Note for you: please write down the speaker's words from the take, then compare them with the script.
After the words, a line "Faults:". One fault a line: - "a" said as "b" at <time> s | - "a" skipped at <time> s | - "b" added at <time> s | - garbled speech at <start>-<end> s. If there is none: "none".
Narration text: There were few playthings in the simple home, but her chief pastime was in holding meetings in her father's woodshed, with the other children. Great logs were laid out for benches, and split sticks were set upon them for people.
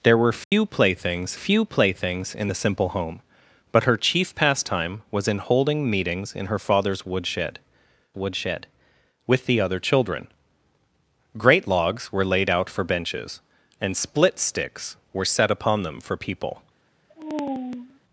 There were few playthings few playthings in the simple home, but her chief pastime was in holding meetings in her father's woodshed woodshed, with the other children. Great logs were laid out for benches, and split sticks were set upon them for people.
Faults:
- "few playthings" added at 1.3 s
- "woodshed" added at 8.2 s